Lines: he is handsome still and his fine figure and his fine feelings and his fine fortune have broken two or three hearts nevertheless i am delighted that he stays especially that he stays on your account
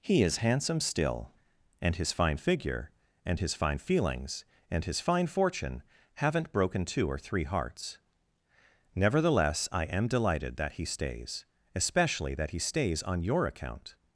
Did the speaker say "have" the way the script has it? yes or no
no